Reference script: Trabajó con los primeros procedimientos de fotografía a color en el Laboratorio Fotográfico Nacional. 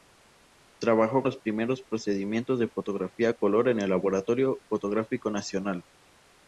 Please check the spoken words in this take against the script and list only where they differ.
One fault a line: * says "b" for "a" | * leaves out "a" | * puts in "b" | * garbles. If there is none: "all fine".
* leaves out "con"